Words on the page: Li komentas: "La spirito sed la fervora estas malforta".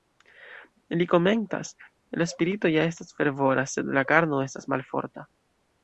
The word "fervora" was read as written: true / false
false